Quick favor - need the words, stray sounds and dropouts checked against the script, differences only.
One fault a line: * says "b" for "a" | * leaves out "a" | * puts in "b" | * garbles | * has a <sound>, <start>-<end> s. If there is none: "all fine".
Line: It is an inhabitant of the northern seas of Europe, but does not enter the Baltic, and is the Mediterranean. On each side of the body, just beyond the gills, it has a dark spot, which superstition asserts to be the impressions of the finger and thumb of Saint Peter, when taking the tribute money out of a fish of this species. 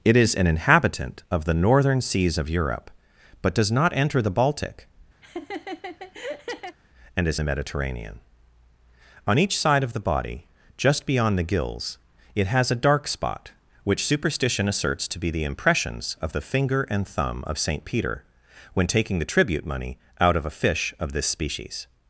* has a laugh, 5.2-6.8 s